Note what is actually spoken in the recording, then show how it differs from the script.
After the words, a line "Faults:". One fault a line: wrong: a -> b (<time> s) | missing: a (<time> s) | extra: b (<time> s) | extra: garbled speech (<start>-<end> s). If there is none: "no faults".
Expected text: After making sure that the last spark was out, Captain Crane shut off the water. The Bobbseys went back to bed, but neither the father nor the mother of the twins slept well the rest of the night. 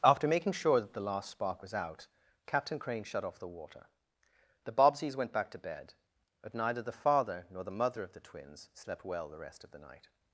After making sure that the last spark was out, Captain Crane shut off the water. The Bobbseys went back to bed, but neither the father nor the mother of the twins slept well the rest of the night.
Faults:
no faults